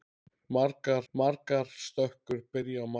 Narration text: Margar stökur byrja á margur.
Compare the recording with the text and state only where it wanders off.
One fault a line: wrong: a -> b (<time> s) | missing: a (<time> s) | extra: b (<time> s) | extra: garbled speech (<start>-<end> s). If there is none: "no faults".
extra: margar (1.1 s)